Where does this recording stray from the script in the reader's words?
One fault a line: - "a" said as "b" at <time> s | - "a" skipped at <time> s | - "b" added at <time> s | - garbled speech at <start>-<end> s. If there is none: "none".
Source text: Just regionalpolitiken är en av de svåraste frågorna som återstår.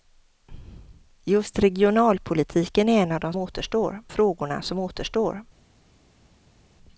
- "svåraste" said as "återstår" at 3.4 s